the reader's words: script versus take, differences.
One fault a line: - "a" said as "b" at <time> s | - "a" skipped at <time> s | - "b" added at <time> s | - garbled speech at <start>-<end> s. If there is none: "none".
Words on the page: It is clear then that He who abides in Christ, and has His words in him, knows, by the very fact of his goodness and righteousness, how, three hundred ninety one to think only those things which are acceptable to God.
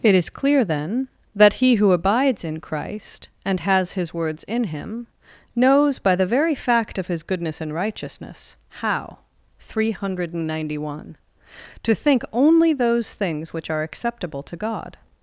none